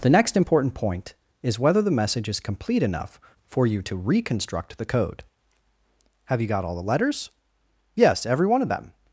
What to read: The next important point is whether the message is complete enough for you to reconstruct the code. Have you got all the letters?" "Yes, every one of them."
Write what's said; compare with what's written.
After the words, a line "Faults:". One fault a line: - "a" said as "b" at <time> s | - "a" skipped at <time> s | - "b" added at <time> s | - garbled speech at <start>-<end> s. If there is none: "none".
The next important point is whether the message is complete enough for you to reconstruct the code. Have you got all the letters?" "Yes, every one of them."
Faults:
none